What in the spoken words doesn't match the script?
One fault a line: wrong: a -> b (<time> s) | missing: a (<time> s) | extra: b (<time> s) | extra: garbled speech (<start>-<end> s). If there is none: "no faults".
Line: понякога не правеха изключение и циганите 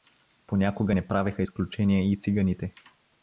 no faults